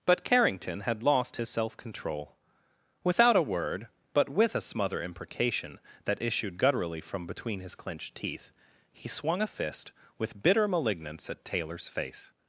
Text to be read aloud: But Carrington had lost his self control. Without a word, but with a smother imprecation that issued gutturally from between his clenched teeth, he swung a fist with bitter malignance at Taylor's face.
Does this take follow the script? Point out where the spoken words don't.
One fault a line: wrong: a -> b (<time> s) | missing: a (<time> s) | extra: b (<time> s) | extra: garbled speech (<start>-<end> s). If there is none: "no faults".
no faults